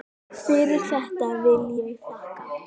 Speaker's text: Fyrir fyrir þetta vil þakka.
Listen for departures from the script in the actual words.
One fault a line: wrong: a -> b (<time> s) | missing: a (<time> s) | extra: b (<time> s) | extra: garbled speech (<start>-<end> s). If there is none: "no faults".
missing: fyrir (0.9 s)
extra: ég (1.8 s)